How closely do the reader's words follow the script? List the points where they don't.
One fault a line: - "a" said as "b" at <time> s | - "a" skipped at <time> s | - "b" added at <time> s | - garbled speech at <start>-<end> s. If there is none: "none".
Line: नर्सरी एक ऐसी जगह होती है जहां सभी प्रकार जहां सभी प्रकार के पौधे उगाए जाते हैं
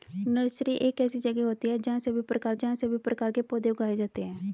none